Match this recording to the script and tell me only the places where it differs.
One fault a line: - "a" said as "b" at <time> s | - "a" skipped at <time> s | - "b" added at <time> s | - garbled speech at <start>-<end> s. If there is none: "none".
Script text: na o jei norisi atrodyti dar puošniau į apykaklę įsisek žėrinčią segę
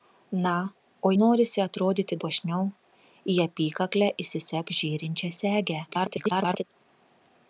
- "jei" skipped at 1.1 s
- "dar" skipped at 2.2 s
- garbled speech at 5.9-6.6 s